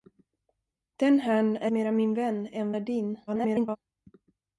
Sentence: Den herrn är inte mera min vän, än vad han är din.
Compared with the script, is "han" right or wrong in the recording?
wrong